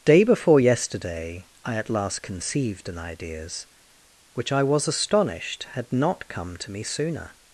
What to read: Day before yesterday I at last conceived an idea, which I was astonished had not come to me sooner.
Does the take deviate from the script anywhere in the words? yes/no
yes